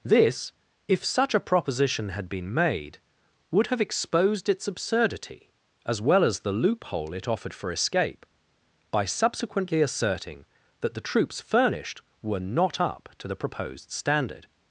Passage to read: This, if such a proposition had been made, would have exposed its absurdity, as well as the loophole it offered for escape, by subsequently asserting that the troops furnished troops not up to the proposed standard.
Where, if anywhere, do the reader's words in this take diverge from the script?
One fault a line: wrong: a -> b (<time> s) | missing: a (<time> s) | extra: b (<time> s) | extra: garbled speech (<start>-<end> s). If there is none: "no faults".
wrong: troops -> were (12.2 s)